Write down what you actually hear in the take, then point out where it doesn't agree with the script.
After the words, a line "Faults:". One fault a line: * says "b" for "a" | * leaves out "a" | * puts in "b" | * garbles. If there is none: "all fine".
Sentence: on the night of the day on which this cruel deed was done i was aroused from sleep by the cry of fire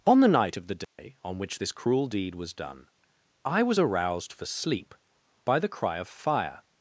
on the night of the day on which this cruel deed was done i was aroused for sleep by the cry of fire
Faults:
* says "for" for "from"